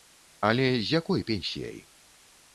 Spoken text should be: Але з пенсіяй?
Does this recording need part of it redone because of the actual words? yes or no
yes